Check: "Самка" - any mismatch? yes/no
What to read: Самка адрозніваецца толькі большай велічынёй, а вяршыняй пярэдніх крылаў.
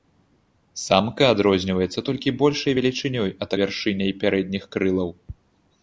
no